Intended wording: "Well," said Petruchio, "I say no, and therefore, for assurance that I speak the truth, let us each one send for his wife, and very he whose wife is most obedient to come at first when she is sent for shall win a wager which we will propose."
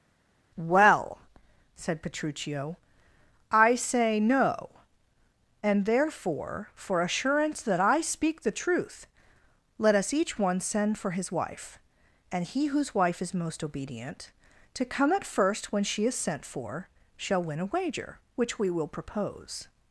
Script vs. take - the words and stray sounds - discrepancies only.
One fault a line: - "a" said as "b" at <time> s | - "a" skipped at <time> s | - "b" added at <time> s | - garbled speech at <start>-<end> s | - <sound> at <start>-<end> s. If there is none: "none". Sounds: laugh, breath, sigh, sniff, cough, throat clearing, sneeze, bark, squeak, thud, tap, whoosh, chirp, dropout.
- "very" skipped at 12.4 s